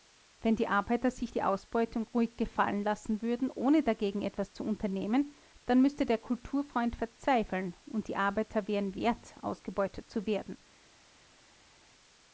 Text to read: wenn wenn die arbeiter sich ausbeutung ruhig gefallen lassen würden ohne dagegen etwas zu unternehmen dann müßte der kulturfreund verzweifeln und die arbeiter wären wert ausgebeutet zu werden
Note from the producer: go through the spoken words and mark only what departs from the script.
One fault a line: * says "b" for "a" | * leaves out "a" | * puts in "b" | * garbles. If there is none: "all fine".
* leaves out "wenn"
* puts in "die"